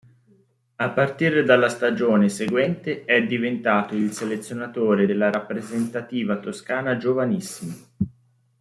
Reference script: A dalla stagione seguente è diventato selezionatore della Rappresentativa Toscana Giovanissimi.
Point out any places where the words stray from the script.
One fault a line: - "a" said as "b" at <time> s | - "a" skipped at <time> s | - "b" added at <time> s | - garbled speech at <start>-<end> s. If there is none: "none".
- "partire" added at 0.9 s
- "il" added at 3.9 s